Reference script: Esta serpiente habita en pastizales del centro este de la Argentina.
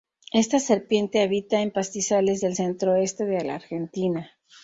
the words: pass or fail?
pass